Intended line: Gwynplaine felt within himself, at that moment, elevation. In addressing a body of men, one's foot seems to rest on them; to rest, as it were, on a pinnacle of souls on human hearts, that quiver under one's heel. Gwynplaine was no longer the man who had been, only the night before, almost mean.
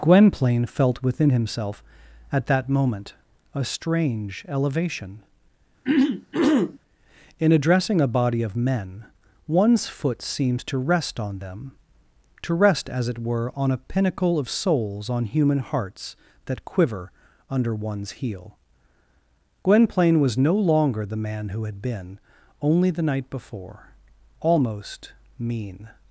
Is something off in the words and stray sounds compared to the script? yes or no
yes